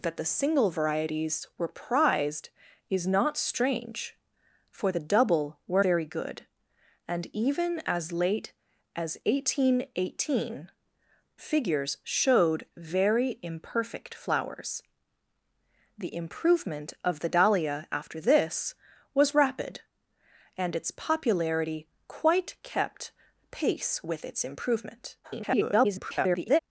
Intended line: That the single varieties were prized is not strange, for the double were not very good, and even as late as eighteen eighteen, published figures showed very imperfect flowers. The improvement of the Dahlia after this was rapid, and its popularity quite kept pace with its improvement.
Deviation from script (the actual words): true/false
true